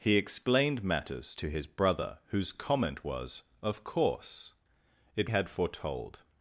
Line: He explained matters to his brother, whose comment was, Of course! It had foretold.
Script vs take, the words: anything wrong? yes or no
no